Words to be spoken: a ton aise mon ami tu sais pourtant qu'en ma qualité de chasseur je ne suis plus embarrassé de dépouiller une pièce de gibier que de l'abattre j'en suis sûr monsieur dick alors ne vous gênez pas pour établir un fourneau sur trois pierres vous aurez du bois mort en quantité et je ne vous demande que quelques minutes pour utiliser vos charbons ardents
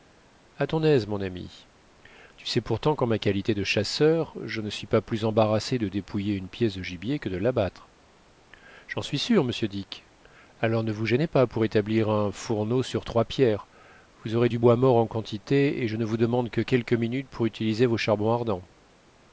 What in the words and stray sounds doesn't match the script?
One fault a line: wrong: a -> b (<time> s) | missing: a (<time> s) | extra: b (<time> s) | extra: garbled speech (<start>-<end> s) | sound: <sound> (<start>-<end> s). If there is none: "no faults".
extra: pas (4.9 s)